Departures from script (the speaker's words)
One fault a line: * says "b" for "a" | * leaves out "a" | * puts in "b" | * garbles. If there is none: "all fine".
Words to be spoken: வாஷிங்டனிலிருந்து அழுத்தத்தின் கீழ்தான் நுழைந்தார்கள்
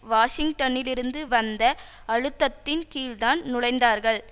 * puts in "வந்த"